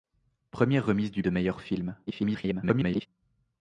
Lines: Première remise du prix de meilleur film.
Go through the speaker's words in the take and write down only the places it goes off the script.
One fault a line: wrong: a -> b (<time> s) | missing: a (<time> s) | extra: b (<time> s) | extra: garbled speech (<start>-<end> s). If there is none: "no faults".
missing: prix (1.2 s)
extra: garbled speech (2.1-3.1 s)